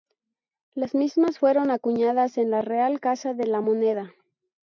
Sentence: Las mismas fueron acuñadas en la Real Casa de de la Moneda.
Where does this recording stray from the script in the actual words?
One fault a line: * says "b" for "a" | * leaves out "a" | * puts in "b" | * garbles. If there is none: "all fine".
* leaves out "de"